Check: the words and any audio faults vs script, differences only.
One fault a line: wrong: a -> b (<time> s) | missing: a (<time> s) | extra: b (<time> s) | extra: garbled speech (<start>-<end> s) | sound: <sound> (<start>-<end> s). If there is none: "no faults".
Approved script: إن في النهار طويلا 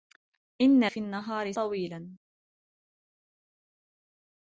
no faults